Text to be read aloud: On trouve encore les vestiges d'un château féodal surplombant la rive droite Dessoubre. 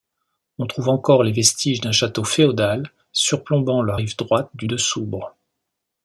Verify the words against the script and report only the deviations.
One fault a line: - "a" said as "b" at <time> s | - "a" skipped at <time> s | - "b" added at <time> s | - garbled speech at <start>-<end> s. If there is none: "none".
- "du" added at 4.5 s